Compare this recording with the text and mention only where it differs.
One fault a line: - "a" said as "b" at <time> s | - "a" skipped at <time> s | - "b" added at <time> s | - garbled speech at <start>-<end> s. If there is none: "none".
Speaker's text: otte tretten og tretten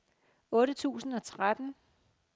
- "tretten" said as "tusind" at 0.7 s